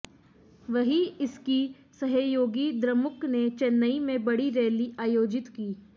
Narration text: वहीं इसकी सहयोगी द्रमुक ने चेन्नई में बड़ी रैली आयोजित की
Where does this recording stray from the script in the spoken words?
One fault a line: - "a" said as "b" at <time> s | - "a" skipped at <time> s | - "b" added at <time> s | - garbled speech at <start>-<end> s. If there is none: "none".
none